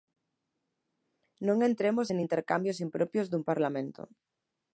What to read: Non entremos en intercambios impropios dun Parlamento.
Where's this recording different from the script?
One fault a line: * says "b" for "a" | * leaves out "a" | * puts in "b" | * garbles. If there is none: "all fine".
all fine